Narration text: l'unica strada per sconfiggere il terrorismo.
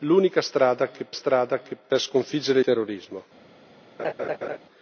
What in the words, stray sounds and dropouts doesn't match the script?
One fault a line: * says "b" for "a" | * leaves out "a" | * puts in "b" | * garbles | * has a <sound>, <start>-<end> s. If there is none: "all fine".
* puts in "strada"
* leaves out "il"
* has a laugh, 4.0-4.6 s